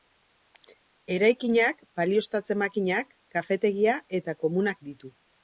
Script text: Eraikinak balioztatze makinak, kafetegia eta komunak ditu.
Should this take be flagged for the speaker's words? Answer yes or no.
no